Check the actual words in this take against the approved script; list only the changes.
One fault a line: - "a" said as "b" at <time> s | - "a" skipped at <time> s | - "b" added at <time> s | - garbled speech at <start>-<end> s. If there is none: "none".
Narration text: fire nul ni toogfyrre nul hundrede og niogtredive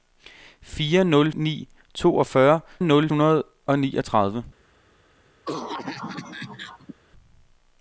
none